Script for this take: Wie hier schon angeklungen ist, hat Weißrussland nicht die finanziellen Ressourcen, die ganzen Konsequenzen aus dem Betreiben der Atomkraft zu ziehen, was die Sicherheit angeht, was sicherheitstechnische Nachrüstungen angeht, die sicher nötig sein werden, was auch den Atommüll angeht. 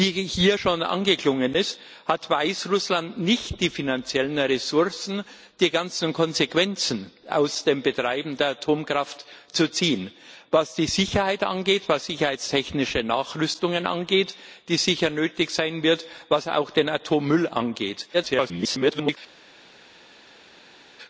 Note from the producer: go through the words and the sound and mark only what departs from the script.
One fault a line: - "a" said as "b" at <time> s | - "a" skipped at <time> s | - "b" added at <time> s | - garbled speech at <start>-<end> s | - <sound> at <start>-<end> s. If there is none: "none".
- garbled speech at 18.1-19.2 s